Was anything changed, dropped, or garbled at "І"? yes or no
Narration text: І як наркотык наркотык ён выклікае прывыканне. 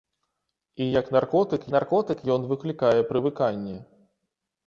no